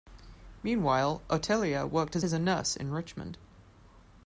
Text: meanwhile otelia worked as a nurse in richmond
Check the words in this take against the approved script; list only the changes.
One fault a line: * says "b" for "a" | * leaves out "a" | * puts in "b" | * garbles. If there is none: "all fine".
* puts in "as"